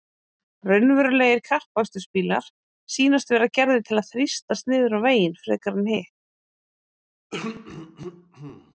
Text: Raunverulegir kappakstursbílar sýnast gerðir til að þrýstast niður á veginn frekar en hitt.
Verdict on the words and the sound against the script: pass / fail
fail